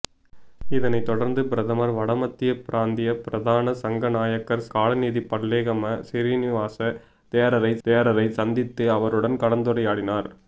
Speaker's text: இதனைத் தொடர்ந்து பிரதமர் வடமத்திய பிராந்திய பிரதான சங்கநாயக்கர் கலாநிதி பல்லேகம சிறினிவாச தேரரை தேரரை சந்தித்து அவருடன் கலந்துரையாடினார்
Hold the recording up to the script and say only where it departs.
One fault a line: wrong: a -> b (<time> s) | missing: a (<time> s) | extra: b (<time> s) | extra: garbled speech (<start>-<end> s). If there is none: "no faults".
no faults